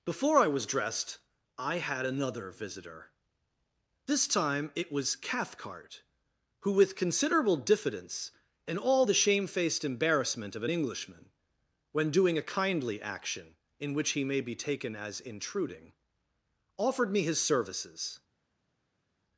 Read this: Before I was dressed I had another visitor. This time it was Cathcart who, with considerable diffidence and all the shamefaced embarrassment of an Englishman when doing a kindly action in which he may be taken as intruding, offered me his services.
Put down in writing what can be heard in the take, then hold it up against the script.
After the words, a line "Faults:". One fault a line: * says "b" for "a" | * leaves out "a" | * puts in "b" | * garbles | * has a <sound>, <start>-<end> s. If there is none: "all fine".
Before I was dressed I had another visitor. This time it was Cathcart who, with considerable diffidence and all the shamefaced embarrassment of an Englishman when doing a kindly action in which he may be taken as intruding, offered me his services.
Faults:
all fine